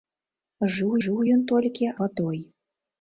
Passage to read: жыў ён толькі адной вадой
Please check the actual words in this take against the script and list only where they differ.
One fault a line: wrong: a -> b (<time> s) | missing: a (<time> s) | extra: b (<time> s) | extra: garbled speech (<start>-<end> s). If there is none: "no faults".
extra: жыў (1.0 s)
missing: адной (1.9 s)